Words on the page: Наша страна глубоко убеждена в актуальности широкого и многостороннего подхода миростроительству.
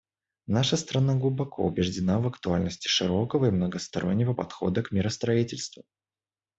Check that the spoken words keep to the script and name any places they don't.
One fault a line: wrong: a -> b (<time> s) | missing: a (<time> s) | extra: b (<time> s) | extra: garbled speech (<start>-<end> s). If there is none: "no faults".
extra: к (4.8 s)